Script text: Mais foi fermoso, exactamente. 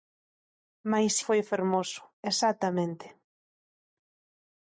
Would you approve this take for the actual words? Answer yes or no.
yes